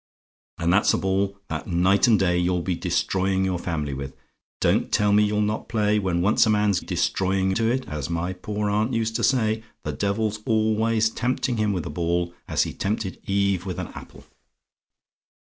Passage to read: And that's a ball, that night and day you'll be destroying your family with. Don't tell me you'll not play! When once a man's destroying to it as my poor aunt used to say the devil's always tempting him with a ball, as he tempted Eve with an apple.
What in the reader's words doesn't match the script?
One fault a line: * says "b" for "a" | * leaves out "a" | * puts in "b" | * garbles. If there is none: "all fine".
all fine